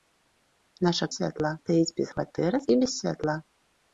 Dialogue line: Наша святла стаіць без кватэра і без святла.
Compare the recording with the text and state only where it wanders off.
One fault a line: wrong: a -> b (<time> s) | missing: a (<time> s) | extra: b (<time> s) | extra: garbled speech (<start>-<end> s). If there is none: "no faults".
no faults